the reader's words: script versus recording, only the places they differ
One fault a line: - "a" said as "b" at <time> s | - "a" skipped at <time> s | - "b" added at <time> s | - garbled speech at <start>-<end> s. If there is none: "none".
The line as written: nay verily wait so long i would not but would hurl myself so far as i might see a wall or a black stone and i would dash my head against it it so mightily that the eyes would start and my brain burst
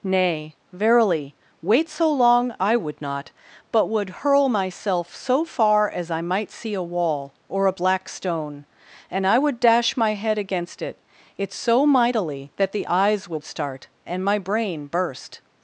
none